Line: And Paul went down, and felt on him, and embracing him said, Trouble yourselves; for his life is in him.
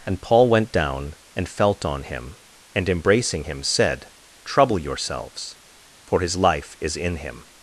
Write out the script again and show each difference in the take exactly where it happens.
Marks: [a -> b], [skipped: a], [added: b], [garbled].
And Paul went down, and felt on him, and embracing him said, Trouble yourselves; for his life is in him.